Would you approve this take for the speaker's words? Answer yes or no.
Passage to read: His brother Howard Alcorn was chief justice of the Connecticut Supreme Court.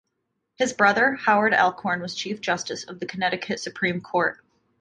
yes